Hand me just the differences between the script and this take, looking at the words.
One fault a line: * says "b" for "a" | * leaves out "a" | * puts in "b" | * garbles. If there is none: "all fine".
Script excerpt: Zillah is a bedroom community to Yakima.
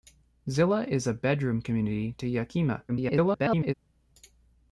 * garbles